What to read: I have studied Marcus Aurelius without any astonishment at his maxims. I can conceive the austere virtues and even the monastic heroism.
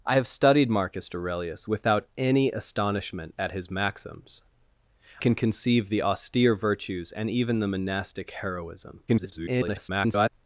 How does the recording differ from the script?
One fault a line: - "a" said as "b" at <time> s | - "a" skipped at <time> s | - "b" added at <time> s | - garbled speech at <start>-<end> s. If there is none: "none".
- "I" skipped at 4.4 s
- garbled speech at 9.1-10.3 s